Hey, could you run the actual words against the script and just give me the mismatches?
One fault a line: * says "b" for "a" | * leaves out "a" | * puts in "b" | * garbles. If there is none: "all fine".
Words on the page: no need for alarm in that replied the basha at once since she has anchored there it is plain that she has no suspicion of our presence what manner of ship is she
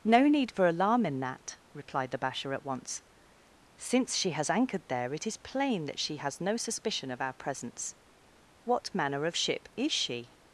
all fine